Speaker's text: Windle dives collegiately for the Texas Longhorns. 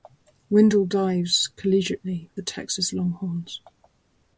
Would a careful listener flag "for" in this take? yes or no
yes